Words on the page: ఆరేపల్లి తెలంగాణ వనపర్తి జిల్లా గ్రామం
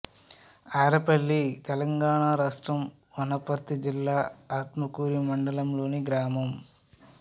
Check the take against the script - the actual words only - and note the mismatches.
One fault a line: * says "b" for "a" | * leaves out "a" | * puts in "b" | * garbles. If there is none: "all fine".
* puts in "రాష్ట్రం"
* puts in "ఆత్మకూరు మండలంలోని"